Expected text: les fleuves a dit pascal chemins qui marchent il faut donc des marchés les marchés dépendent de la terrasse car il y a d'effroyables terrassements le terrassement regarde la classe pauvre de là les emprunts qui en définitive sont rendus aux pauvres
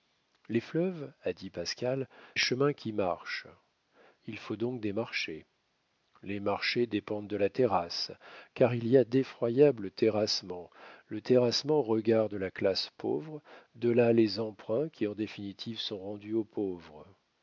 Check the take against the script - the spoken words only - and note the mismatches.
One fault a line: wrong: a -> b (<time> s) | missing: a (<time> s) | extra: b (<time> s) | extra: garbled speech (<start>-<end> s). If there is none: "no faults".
no faults